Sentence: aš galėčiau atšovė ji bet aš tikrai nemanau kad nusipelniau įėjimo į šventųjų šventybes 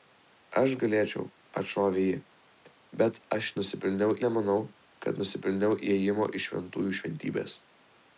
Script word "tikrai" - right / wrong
wrong